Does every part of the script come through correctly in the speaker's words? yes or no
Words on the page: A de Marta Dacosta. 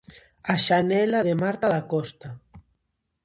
no